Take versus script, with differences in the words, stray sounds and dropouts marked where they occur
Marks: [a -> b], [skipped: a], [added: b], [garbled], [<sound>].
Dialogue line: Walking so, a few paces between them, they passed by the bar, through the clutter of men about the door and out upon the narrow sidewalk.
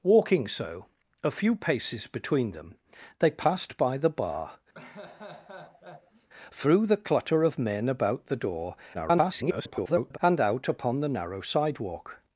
Walking so, a few paces between them, they passed by the bar, [laugh] through the clutter of men about the door [garbled] and out upon the narrow sidewalk.